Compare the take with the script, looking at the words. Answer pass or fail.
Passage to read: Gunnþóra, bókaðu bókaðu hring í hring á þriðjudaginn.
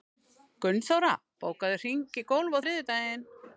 fail